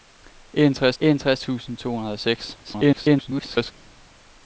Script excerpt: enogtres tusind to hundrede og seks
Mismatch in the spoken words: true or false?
true